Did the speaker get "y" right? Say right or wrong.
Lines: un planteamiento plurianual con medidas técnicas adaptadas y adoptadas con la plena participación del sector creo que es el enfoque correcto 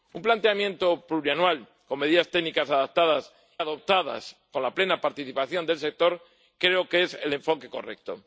wrong